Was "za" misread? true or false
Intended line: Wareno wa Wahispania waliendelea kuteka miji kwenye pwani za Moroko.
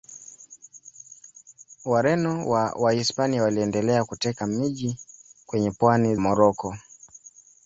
true